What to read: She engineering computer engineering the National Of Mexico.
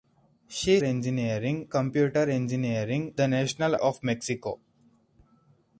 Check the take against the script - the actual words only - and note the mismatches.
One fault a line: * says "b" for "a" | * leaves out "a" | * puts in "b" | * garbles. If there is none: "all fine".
all fine